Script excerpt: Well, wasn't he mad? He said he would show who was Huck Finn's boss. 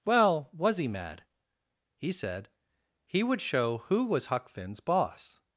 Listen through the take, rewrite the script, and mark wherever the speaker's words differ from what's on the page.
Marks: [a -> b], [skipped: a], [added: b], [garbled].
Well, [wasn't -> was] he mad? He said he would show who was Huck Finn's boss.